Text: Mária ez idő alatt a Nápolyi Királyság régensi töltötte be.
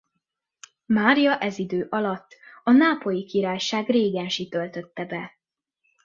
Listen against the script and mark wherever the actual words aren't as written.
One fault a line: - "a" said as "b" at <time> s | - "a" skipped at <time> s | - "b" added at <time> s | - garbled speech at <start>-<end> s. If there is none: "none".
none